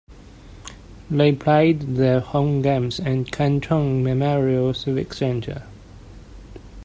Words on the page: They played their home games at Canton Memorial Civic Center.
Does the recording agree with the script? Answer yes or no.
yes